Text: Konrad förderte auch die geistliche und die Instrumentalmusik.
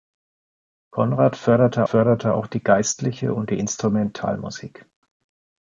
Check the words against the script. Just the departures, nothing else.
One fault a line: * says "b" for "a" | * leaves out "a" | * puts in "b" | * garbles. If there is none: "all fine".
* puts in "förderte"